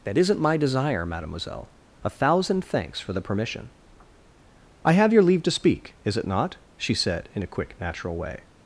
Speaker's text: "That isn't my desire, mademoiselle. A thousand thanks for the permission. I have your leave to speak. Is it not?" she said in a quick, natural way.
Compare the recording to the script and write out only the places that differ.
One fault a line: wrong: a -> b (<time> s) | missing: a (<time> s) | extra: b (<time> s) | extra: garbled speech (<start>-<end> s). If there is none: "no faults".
no faults